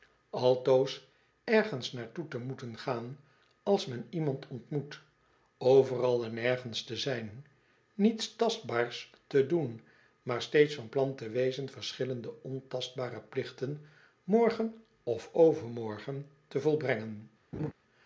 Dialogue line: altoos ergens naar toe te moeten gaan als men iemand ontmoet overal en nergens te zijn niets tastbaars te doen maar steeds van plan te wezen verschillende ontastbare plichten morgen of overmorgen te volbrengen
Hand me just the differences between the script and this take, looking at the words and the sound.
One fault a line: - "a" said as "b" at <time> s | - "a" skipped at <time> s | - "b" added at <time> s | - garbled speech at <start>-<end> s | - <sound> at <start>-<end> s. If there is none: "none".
- laugh at 17.5-17.7 s